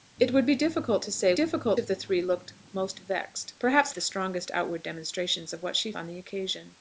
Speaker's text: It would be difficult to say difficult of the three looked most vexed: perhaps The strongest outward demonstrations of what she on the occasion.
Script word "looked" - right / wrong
right